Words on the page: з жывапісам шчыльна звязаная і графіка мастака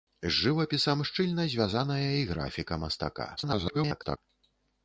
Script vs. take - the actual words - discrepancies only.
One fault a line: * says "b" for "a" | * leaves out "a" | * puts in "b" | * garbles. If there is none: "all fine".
* garbles